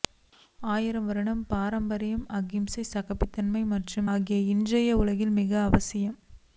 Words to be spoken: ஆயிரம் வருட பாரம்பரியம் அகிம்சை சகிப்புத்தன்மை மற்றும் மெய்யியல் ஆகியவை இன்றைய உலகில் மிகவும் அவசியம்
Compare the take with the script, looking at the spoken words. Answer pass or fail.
fail